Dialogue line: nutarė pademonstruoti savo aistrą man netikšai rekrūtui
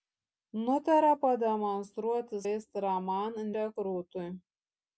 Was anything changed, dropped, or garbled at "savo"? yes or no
yes